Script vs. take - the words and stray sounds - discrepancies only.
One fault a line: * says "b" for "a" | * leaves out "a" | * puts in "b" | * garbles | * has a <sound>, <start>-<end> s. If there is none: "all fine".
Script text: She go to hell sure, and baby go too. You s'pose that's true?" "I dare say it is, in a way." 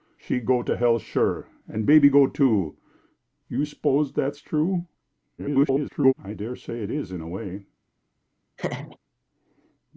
* garbles
* has a laugh, 8.6-9.0 s